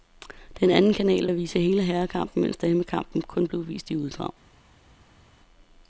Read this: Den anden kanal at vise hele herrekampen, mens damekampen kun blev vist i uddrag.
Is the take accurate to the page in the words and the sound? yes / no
yes